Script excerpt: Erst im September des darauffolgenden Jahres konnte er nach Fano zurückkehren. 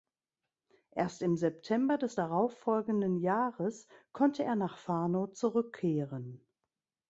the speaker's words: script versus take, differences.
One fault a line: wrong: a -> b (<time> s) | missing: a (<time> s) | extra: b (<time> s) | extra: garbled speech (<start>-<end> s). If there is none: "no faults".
no faults